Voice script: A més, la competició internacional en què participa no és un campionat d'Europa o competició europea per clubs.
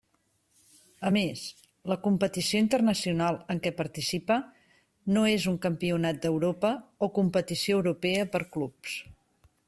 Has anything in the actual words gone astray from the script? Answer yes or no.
no